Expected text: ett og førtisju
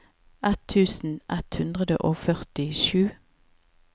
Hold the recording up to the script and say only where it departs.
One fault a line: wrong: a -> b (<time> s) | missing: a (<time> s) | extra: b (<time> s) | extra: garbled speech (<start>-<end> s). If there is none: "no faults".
extra: tusen ett hundre (0.7 s)